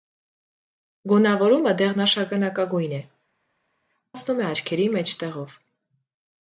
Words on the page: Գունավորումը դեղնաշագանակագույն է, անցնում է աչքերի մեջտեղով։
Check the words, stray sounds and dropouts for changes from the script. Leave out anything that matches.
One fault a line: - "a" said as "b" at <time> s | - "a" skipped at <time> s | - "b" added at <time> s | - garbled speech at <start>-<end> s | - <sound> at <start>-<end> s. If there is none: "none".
none